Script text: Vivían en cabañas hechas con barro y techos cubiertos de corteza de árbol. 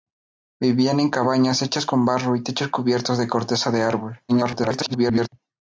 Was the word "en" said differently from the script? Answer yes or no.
no